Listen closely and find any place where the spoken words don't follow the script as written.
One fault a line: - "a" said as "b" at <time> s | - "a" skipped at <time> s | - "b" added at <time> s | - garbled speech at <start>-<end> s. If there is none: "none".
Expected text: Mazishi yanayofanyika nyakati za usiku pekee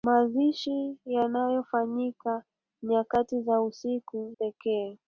none